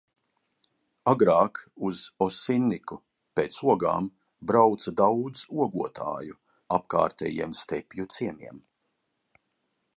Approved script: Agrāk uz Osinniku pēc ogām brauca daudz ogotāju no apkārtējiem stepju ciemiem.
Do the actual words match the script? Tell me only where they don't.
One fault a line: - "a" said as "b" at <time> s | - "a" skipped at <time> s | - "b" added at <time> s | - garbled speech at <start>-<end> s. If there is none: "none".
- "no" skipped at 6.4 s